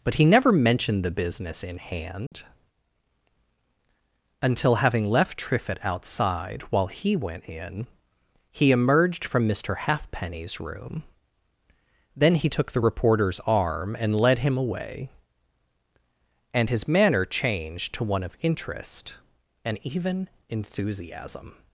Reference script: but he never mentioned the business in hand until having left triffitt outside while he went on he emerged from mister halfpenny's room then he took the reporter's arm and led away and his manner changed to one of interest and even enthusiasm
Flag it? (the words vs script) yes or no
yes